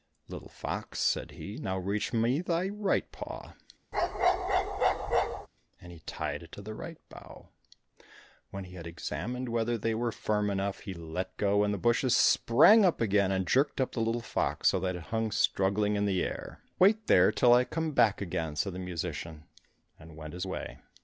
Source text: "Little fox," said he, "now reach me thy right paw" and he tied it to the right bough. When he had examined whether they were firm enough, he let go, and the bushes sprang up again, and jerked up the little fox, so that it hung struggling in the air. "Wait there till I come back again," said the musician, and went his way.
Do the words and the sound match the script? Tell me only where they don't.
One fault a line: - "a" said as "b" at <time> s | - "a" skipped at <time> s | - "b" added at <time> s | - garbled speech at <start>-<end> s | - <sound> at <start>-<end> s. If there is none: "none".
- bark at 3.9-5.5 s